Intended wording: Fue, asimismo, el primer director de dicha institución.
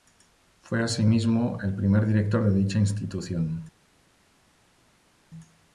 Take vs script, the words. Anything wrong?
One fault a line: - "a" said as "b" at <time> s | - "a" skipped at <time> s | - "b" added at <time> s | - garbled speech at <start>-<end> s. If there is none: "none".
none